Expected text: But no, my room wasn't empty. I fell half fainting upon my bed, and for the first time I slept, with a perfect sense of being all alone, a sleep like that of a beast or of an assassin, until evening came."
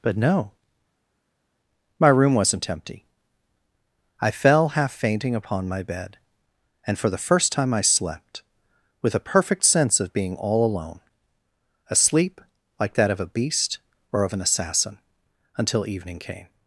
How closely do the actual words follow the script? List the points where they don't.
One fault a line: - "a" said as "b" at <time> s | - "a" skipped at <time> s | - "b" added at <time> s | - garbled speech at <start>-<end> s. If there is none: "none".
none